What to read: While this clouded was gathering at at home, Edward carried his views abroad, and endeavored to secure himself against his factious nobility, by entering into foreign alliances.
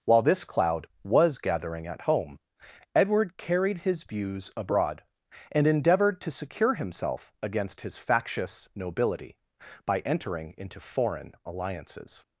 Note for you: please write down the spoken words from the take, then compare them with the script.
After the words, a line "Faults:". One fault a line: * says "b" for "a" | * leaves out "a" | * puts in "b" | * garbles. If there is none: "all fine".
While this cloud was gathering at home, Edward carried his views abroad, and endeavored to secure himself against his factious nobility, by entering into foreign alliances.
Faults:
* says "cloud" for "clouded"
* leaves out "at"